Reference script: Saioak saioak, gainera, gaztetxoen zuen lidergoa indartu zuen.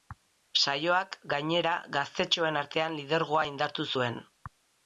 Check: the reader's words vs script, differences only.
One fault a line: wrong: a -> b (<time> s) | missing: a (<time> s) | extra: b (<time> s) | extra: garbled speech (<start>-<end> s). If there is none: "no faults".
missing: saioak (1.2 s)
wrong: zuen -> artean (2.6 s)